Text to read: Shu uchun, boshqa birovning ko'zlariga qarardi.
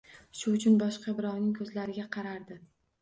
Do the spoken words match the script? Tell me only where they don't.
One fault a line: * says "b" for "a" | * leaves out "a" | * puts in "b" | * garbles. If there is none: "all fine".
all fine